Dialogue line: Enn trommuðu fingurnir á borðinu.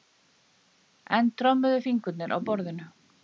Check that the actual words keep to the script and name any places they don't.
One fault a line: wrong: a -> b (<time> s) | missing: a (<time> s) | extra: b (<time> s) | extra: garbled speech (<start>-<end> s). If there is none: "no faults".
no faults